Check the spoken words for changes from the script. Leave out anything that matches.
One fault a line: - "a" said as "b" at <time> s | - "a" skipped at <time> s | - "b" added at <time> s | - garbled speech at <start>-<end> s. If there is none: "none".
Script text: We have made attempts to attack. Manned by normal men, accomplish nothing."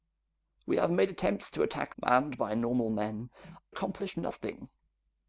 none